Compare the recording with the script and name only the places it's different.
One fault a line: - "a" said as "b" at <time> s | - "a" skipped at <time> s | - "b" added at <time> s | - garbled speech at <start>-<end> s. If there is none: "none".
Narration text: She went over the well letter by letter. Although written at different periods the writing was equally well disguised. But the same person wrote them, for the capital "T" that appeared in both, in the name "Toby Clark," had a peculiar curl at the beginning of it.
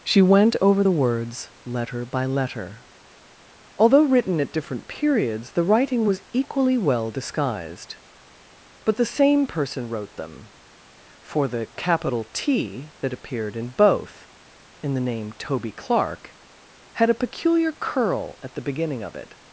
- "well" said as "words" at 0.9 s